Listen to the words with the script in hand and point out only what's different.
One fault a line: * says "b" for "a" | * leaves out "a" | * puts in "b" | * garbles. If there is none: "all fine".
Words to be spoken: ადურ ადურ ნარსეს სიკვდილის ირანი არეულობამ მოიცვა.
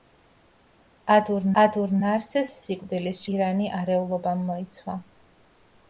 all fine